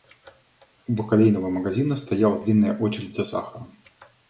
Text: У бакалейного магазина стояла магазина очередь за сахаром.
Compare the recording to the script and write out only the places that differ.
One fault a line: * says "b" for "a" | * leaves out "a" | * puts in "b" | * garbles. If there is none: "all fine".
* says "длинная" for "магазина"